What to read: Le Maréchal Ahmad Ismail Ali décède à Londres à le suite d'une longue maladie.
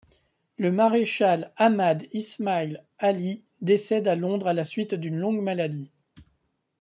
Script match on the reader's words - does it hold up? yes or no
no